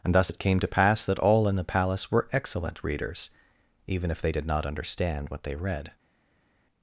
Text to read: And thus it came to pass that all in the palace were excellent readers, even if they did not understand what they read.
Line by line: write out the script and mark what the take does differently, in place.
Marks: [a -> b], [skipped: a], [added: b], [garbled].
And thus it came to pass that all in the palace were excellent readers, even if they did not understand what they read.